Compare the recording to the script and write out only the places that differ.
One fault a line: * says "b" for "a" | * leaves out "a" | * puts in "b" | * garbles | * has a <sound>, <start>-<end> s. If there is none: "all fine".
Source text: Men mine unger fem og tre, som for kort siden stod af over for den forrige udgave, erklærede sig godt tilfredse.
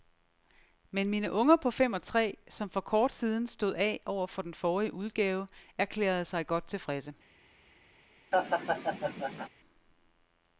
* puts in "på"
* has a laugh, 8.3-9.5 s